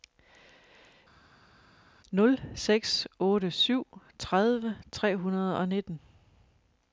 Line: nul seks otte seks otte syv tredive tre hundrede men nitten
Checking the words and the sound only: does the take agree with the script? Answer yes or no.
no